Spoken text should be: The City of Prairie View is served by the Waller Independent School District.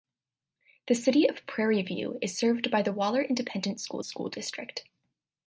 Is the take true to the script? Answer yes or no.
no